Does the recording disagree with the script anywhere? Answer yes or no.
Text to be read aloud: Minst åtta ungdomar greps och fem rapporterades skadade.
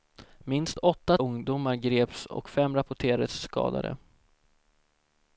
no